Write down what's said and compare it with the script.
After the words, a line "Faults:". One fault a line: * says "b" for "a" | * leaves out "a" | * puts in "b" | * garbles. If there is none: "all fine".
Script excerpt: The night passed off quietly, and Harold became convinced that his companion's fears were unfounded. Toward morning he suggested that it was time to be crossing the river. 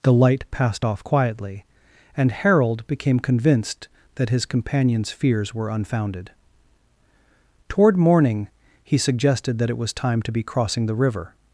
The light passed off quietly, and Harold became convinced that his companion's fears were unfounded. Toward morning he suggested that it was time to be crossing the river.
Faults:
* says "light" for "night"